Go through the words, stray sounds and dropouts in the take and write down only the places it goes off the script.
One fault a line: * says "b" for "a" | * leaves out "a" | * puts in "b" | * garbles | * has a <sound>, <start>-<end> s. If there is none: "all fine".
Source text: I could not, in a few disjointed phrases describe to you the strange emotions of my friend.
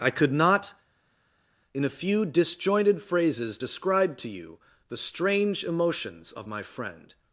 all fine